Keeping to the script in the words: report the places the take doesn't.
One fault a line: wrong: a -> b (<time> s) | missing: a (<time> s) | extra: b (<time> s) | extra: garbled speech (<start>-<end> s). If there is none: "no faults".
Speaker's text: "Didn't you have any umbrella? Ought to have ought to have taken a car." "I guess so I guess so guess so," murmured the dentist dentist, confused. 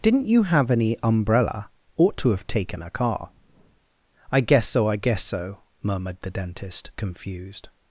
missing: ought to have (2.5 s)
missing: guess so (5.6 s)
missing: dentist (6.9 s)